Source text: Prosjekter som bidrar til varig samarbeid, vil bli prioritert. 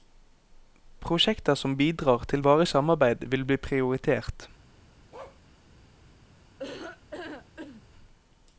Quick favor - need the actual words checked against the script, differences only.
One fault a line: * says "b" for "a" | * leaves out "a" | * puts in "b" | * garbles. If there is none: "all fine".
all fine